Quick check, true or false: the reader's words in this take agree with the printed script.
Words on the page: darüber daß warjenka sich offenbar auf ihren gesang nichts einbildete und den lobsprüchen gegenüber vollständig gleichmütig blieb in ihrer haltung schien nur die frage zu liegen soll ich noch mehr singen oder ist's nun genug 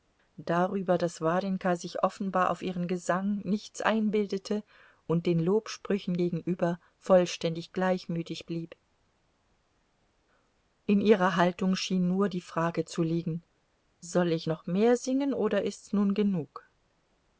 true